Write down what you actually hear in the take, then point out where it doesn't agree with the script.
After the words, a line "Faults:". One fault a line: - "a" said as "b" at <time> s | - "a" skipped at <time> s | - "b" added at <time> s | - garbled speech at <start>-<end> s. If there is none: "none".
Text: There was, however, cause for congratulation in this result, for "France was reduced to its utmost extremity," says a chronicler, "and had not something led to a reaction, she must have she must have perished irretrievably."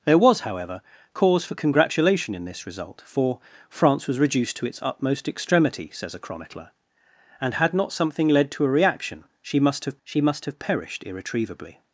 There was, however, cause for congratulation in this result, for "France was reduced to its utmost extremity," says a chronicler, "and had not something led to a reaction, she must have she must have perished irretrievably."
Faults:
none